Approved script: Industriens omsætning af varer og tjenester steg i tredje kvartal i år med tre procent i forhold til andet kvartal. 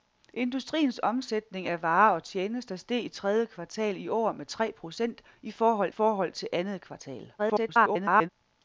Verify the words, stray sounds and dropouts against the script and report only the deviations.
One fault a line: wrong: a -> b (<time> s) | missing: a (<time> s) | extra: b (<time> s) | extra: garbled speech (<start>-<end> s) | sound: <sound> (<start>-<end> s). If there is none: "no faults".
extra: forhold (5.9 s)
extra: garbled speech (7.4-8.3 s)